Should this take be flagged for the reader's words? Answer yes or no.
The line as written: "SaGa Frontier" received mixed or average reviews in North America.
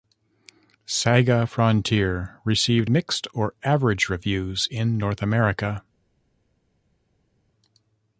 no